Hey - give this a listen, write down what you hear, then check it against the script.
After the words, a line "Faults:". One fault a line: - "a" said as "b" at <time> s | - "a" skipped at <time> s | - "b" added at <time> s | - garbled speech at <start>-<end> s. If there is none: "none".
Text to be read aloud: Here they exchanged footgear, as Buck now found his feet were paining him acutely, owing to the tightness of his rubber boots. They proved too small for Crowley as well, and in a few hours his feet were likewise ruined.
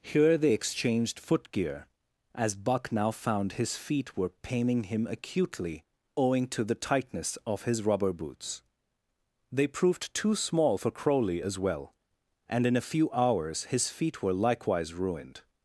Here they exchanged footgear, as Buck now found his feet were paining him acutely, owing to the tightness of his rubber boots. They proved too small for Crowley as well, and in a few hours his feet were likewise ruined.
Faults:
none